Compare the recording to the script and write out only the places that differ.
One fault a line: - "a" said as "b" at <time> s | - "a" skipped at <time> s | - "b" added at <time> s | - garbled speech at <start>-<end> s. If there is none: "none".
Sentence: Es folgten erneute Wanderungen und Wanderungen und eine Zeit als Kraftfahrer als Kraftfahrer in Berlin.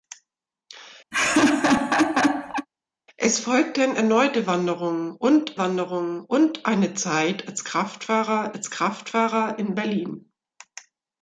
none